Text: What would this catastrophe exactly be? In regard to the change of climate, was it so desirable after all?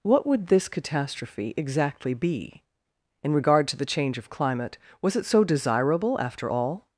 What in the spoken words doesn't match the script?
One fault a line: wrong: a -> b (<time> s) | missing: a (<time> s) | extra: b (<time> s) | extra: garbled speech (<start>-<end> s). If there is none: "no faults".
no faults